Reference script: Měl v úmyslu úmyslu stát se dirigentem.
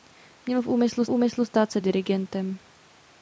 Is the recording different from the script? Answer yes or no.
no